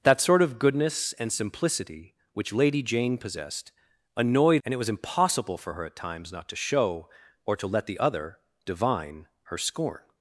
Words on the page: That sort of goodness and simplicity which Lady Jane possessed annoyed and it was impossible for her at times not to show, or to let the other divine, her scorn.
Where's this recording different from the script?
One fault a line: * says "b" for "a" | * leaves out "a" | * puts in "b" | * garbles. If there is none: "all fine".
all fine